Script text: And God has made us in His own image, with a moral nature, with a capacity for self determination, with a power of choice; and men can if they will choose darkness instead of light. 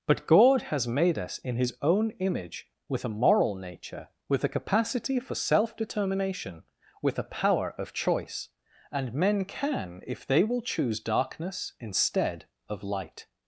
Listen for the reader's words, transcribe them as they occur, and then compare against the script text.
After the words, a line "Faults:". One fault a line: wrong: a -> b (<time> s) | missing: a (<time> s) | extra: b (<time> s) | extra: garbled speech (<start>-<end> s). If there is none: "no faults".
But God has made us in His own image, with a moral nature, with a capacity for self determination, with a power of choice; and men can if they will choose darkness instead of light.
Faults:
wrong: And -> But (0.1 s)